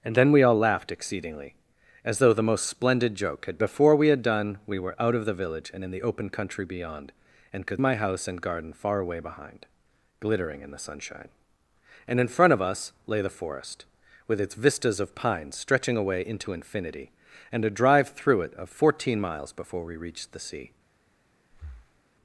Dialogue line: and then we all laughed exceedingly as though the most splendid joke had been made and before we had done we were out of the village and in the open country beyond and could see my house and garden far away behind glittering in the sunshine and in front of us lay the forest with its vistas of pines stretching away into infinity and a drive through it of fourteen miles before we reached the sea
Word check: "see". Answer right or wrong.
wrong